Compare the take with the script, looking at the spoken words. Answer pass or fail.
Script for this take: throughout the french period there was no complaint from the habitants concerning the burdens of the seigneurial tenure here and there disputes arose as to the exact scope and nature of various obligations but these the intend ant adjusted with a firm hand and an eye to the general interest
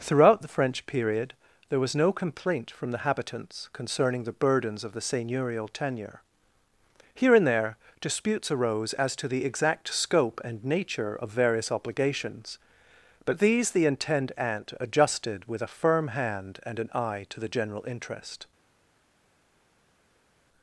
pass